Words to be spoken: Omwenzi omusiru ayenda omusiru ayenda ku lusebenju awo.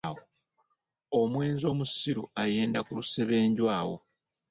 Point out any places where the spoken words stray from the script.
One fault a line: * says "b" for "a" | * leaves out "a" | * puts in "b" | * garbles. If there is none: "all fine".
* leaves out "omusiru ayenda"